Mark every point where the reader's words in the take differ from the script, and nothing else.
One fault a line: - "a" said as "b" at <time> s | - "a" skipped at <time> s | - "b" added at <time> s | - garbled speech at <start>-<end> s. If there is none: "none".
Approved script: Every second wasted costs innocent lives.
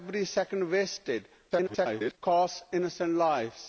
- garbled speech at 1.5-2.2 s